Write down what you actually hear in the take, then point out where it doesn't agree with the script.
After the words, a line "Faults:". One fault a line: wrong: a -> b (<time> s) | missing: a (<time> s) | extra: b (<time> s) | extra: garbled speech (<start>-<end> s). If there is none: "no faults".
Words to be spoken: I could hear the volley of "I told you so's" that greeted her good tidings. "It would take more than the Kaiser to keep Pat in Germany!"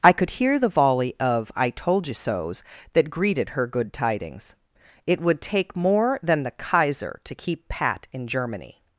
I could hear the volley of "I told you so's" that greeted her good tidings. "It would take more than the Kaiser to keep Pat in Germany!"
Faults:
no faults